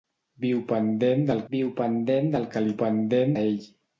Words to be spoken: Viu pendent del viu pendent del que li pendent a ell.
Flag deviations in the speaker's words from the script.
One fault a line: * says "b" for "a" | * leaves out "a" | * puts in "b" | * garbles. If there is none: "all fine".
all fine